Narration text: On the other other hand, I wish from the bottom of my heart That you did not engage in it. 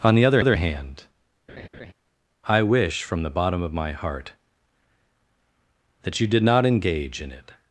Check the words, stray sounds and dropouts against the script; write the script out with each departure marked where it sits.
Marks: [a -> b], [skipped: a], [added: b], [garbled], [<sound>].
On the other other hand, [laugh] I wish from the bottom of my heart That you did not engage in it.